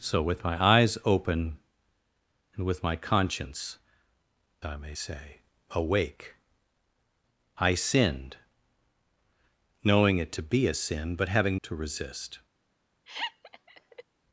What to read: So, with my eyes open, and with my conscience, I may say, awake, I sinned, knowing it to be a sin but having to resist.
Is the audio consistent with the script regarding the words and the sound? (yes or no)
no